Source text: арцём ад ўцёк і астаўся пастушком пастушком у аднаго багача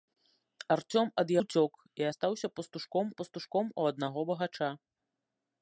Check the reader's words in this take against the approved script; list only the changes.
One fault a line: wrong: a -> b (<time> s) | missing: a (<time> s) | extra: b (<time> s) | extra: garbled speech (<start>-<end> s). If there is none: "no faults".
no faults